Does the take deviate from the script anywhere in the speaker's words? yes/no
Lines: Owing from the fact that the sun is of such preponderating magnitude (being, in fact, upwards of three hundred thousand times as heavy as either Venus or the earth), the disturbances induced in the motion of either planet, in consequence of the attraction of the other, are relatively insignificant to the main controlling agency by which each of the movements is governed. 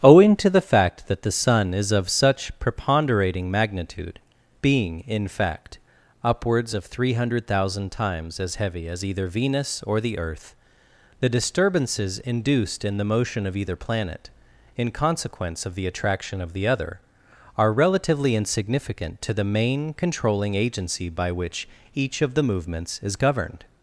yes